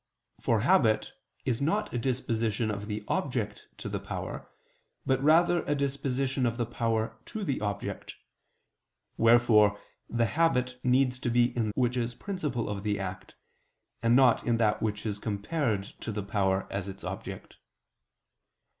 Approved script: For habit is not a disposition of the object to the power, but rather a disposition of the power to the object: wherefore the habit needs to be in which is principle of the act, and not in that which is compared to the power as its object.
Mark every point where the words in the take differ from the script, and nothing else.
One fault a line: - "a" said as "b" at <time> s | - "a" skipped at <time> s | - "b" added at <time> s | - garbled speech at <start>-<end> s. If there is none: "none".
none